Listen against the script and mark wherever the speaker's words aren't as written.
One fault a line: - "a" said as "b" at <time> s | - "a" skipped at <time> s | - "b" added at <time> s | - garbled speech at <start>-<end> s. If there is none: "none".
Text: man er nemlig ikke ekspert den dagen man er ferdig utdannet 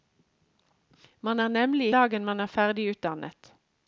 - "ikke ekspert den" skipped at 1.9 s